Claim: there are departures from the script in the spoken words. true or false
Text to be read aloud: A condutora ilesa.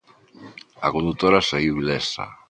true